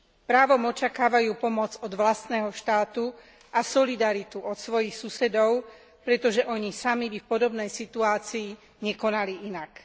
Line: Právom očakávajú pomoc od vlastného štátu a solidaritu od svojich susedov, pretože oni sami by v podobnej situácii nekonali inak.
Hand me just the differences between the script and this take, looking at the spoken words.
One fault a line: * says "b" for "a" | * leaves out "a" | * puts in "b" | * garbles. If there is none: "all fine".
all fine